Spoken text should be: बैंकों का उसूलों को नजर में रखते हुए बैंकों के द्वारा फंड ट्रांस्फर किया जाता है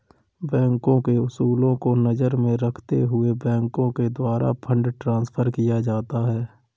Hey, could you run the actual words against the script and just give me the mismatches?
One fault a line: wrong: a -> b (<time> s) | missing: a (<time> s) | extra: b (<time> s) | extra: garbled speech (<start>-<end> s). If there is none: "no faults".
wrong: का -> के (1.0 s)